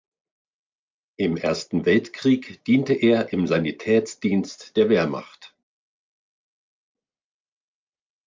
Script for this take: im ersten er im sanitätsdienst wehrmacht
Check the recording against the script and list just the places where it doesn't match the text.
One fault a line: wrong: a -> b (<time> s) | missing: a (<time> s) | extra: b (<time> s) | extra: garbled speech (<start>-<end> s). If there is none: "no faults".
extra: weltkrieg diente (1.8 s)
extra: der (4.8 s)